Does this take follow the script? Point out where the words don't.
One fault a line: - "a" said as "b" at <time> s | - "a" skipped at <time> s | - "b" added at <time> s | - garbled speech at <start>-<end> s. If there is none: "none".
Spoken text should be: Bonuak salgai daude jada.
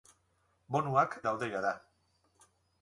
- "salgai" skipped at 1.2 s